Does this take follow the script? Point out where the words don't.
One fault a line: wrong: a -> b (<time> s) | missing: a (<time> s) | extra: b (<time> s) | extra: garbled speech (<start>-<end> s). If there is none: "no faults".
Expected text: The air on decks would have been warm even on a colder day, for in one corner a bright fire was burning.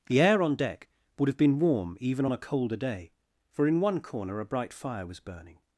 wrong: decks -> deck (0.6 s)